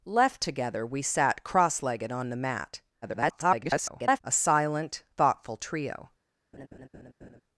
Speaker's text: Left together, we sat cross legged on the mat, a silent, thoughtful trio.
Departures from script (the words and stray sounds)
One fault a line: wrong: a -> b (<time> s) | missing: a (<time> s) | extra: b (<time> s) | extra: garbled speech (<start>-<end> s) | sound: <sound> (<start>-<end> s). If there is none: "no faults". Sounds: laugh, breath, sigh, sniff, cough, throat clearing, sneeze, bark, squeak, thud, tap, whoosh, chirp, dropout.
extra: garbled speech (3.0-4.2 s)
sound: laugh (6.5-7.4 s)